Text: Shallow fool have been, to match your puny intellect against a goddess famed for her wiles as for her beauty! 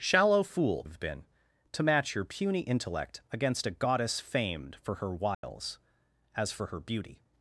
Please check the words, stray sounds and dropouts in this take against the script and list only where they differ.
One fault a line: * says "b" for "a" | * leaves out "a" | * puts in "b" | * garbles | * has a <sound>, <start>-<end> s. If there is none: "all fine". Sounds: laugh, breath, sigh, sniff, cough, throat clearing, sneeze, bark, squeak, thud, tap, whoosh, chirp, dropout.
* has a dropout, 5.3-5.4 s